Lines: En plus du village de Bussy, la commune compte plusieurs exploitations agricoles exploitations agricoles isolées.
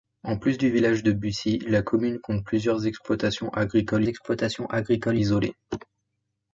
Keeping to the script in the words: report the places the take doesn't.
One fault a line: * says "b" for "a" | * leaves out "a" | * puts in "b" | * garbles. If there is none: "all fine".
all fine